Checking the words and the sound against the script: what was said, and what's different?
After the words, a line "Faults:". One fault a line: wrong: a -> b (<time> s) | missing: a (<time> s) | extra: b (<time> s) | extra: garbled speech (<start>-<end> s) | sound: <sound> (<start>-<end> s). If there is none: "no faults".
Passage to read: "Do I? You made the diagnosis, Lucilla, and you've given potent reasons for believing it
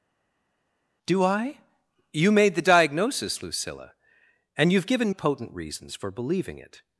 "Do I? You made the diagnosis, Lucilla, and you've given potent reasons for believing it
Faults:
no faults